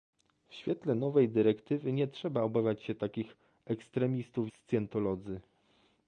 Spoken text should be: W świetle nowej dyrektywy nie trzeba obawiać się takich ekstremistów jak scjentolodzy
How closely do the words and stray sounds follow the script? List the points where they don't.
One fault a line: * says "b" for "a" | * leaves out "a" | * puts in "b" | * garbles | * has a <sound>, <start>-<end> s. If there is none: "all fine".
* leaves out "jak"